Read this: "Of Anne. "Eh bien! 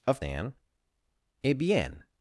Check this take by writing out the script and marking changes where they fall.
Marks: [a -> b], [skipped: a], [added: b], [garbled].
"Of Anne. "Eh bien!